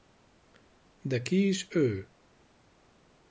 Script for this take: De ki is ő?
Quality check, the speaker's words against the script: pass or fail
pass